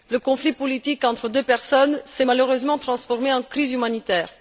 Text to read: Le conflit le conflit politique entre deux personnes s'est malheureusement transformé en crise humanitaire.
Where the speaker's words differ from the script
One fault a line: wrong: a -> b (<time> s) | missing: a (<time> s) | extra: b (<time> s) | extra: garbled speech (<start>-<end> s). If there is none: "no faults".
missing: le conflit (0.5 s)